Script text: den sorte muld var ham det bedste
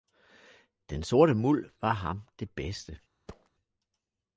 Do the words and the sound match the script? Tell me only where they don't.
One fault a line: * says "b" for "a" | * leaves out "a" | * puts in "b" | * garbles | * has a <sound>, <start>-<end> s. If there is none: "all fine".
* has a thud, 3.3-3.5 s